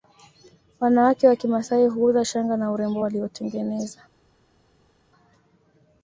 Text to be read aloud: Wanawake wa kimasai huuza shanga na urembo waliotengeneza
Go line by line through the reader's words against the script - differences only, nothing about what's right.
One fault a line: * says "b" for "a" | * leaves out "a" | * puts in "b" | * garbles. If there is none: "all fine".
all fine